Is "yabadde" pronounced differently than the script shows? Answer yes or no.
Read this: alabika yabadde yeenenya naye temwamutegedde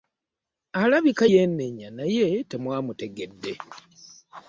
yes